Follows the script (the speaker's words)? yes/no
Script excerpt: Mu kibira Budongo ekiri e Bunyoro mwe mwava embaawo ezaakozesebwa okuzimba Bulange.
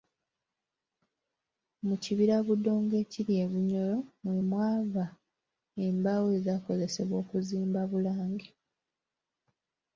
yes